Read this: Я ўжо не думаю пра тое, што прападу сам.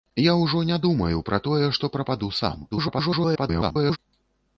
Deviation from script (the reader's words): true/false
true